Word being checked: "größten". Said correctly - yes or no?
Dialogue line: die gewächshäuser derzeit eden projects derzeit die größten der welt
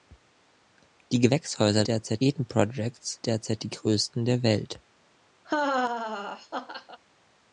yes